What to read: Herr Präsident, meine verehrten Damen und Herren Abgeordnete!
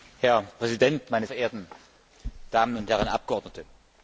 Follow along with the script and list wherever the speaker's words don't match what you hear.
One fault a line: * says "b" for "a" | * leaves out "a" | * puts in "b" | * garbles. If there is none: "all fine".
all fine